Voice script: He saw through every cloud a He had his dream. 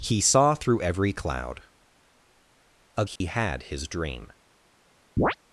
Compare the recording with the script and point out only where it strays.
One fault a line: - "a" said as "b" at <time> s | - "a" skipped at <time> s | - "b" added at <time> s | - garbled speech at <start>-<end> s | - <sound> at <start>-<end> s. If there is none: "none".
- dropout at 3.2-3.2 s
- chirp at 5.2-5.4 s